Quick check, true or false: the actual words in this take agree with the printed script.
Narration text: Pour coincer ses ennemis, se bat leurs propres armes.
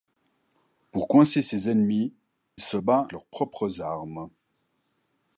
true